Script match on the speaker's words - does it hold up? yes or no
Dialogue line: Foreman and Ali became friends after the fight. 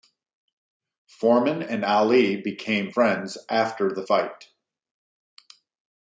yes